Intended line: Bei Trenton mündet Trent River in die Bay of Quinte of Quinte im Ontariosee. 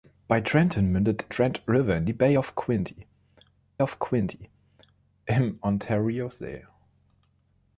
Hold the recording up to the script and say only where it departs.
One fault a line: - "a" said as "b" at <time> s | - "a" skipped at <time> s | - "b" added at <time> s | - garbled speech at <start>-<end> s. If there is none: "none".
none